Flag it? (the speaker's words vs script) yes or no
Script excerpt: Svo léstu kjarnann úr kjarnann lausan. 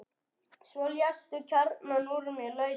yes